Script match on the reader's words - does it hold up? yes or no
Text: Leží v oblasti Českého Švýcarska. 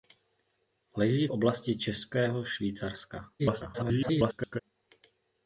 no